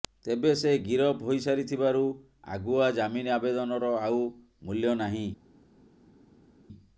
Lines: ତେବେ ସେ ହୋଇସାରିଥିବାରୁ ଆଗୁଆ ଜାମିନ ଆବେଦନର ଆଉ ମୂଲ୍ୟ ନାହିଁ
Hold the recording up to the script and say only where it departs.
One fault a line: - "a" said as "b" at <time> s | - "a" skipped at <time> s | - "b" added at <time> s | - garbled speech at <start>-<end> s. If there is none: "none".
- "ଗିରଫ" added at 0.8 s